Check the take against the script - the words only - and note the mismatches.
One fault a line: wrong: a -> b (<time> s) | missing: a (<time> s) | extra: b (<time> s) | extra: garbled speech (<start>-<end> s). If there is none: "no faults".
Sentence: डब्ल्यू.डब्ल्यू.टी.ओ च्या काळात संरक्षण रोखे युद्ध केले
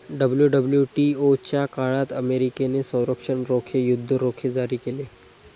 extra: अमेरिकेने (2.1 s)
extra: रोखे जारी (4.1 s)